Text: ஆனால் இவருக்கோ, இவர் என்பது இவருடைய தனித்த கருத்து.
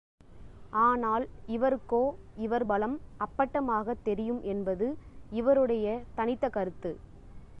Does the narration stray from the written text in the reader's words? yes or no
yes